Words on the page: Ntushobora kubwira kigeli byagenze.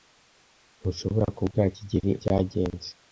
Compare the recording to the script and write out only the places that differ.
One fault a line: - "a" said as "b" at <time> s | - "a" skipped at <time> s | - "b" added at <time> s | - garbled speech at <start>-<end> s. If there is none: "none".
none